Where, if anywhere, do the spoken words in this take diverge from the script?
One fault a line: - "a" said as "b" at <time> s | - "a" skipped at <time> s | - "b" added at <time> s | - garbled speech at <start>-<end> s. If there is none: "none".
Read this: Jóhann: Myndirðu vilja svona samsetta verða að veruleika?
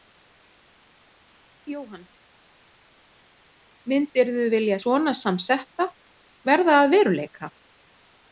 none